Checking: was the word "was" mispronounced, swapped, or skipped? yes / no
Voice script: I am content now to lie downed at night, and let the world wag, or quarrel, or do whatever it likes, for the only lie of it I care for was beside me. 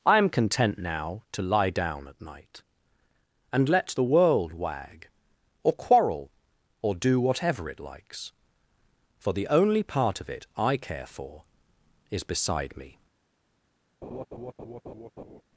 yes